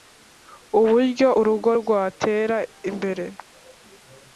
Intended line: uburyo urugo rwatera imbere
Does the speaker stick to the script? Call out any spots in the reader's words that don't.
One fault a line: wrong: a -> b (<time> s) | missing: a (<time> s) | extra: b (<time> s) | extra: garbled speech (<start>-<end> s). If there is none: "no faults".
no faults